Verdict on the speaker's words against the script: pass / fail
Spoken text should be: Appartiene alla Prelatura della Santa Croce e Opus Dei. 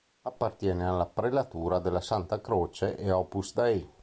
pass